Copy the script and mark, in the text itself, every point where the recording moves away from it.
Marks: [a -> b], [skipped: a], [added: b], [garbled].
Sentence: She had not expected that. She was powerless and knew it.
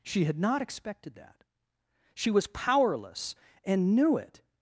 She had not expected that. She was powerless and knew it.